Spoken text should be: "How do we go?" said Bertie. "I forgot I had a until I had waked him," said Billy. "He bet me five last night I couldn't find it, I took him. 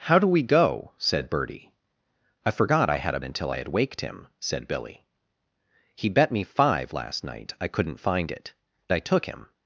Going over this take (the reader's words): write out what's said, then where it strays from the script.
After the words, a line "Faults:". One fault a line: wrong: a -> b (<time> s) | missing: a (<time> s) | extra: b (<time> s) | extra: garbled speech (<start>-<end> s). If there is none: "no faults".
"How do we go?" said Bertie. "I forgot I had a until I had waked him," said Billy. "He bet me five last night I couldn't find it, I took him.
Faults:
no faults